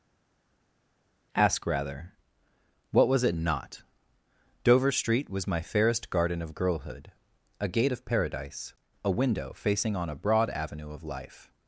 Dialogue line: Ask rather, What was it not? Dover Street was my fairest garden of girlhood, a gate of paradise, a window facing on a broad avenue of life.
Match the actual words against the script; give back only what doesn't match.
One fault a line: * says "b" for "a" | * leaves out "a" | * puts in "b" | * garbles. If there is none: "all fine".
all fine